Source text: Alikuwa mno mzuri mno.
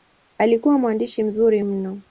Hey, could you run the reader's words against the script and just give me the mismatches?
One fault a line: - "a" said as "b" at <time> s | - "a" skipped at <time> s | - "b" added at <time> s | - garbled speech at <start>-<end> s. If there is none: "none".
- "mno" said as "mwandishi" at 0.8 s